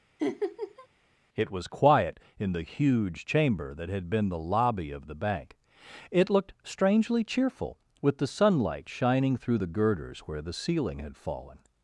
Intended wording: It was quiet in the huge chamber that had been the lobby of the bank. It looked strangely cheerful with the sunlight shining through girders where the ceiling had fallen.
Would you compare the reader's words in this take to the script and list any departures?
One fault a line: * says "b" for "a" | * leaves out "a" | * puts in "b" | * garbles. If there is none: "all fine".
* puts in "the"